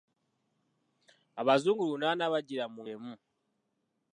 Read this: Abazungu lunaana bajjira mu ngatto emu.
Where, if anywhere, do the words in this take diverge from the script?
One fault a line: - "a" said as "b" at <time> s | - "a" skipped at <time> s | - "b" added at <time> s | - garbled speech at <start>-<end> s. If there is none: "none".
- "ngatto" skipped at 2.8 s